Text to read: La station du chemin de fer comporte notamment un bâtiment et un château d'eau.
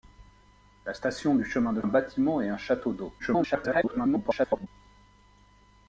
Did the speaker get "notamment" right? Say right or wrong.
wrong